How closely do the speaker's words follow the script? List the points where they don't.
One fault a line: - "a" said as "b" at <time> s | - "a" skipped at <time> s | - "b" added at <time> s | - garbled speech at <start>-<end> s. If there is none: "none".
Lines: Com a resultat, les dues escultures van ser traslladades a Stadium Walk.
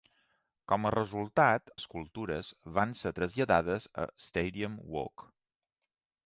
- "les dues" skipped at 1.7 s